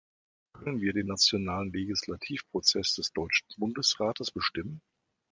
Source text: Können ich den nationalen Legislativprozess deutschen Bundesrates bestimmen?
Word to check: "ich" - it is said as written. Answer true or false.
false